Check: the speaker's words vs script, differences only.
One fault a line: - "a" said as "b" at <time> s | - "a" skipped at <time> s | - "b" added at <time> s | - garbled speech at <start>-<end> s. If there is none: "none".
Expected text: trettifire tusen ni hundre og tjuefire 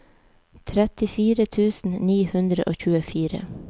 none